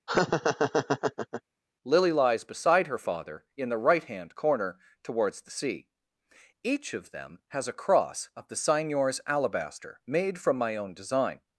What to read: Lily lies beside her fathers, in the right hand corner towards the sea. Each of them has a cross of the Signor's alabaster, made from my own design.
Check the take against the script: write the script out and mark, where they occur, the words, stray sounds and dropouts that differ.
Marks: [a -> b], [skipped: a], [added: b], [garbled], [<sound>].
[laugh] Lily lies beside her [fathers, -> father] in the right hand corner towards the sea. Each of them has a cross of the Signor's alabaster, made from my own design.